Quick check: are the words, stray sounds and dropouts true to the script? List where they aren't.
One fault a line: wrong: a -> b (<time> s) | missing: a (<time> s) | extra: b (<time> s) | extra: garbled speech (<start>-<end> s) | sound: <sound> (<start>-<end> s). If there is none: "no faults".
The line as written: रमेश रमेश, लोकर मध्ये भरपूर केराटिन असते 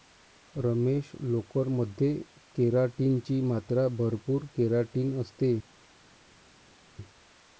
missing: रमेश (1.1 s)
extra: केराटिन ची मात्रा (2.5 s)